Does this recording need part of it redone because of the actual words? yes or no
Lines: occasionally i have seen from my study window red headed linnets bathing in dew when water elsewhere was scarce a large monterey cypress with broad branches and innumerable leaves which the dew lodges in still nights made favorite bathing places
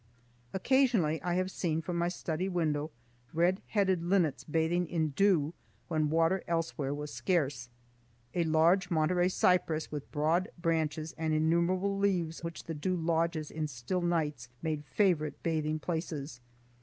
no